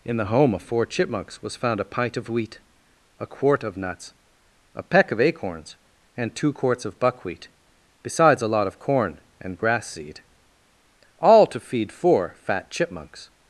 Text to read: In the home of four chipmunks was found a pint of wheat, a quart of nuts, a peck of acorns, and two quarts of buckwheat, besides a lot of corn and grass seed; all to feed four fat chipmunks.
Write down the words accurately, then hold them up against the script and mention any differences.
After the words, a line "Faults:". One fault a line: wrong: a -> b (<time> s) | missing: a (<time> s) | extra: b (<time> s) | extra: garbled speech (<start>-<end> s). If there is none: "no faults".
In the home of four chipmunks was found a pint of wheat, a quart of nuts, a peck of acorns, and two quarts of buckwheat, besides a lot of corn and grass seed; all to feed four fat chipmunks.
Faults:
no faults